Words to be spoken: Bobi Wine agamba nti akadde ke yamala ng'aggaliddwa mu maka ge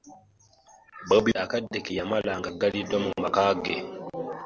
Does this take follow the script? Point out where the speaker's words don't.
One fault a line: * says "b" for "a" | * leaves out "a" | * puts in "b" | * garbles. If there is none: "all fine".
* leaves out "Wine agamba nti"